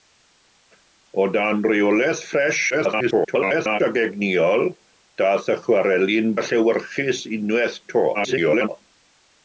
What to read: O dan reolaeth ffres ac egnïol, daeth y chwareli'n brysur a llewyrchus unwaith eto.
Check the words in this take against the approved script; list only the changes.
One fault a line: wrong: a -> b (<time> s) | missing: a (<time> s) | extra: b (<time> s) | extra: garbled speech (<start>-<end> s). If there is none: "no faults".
extra: garbled speech (2.7-3.8 s)
missing: brysur (6.3 s)
extra: garbled speech (8.1-8.7 s)